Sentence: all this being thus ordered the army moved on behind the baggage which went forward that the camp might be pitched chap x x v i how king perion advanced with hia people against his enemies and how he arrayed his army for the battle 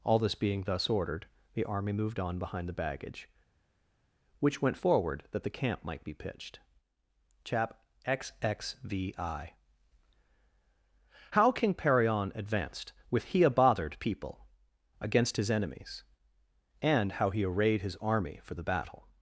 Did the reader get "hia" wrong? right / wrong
wrong